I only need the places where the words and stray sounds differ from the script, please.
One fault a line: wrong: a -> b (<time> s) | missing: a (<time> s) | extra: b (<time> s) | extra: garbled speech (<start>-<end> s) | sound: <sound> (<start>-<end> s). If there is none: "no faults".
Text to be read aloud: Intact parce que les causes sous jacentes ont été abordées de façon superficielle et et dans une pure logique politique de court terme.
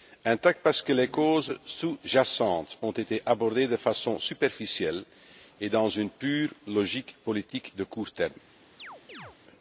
missing: et (5.7 s)
sound: chirp (8.8-9.4 s)